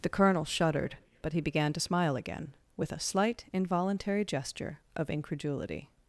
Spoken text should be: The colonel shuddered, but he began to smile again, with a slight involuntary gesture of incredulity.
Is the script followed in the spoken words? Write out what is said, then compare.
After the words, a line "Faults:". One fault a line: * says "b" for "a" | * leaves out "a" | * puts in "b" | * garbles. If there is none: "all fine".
The colonel shuddered, but he began to smile again, with a slight involuntary gesture of incredulity.
Faults:
all fine